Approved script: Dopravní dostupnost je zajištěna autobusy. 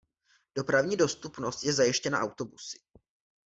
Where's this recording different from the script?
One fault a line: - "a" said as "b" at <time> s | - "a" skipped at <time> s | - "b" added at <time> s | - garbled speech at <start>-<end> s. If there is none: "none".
none